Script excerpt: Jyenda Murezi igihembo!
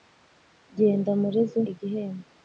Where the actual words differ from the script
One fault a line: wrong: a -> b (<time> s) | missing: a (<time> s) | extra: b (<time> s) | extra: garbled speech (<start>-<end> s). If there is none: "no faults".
no faults